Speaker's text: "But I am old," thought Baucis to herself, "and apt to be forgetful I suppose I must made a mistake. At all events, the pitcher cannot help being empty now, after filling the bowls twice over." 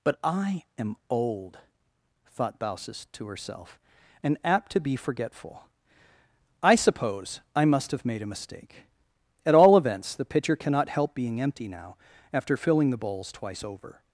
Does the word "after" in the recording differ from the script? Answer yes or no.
no